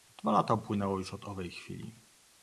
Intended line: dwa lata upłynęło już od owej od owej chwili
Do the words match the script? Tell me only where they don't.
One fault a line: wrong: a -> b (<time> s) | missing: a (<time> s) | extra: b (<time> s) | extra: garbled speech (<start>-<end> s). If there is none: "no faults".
missing: od owej (1.5 s)